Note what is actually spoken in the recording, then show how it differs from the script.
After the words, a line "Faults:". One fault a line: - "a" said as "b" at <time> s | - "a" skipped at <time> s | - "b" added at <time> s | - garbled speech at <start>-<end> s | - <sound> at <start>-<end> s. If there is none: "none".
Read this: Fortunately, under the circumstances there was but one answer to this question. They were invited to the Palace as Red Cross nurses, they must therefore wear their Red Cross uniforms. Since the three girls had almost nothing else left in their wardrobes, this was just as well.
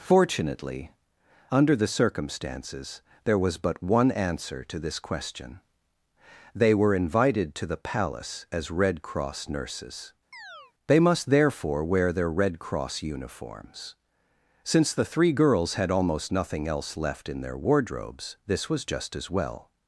Fortunately, under the circumstances there was but one answer to this question. They were invited to the Palace as Red Cross nurses, they must therefore wear their Red Cross uniforms. Since the three girls had almost nothing else left in their wardrobes, this was just as well.
Faults:
- chirp at 10.3-10.7 s